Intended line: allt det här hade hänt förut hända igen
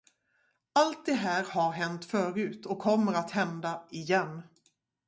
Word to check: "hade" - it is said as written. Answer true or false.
false